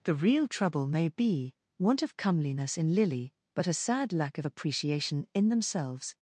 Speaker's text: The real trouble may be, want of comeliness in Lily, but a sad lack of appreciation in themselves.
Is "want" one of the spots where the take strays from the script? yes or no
no